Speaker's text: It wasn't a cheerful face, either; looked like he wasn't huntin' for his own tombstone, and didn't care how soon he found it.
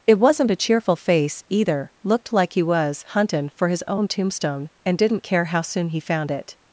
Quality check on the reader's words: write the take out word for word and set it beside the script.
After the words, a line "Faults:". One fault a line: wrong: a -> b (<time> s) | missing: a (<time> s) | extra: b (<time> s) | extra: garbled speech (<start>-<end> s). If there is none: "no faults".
It wasn't a cheerful face, either; looked like he was huntin' for his own tombstone, and didn't care how soon he found it.
Faults:
wrong: wasn't -> was (2.6 s)